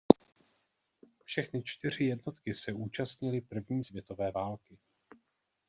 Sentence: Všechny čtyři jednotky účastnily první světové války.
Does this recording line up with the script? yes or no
no